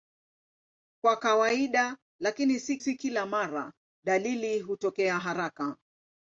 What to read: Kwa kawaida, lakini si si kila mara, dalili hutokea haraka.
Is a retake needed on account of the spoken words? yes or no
no